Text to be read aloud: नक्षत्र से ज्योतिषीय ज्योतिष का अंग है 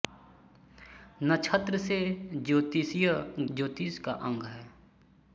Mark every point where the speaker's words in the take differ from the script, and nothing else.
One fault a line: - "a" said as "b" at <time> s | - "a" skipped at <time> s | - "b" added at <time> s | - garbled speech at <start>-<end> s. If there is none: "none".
none